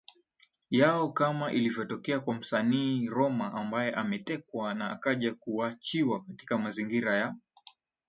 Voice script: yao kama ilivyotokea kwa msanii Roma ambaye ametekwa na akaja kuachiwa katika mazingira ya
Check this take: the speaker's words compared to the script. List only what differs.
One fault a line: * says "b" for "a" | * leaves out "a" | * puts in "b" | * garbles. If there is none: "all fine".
all fine